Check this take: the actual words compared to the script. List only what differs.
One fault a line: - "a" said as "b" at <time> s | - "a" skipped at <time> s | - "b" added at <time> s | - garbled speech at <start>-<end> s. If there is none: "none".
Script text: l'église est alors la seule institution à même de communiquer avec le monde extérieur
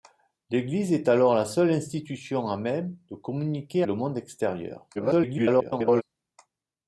- "avec" skipped at 3.8 s
- garbled speech at 4.9-6.0 s